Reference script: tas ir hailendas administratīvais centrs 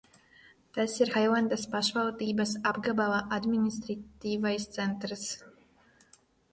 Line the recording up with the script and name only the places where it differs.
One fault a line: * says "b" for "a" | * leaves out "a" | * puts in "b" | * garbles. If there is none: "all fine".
* puts in "pašvaldības apgabala"